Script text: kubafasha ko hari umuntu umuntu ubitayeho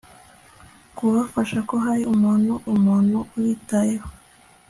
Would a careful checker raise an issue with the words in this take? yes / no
no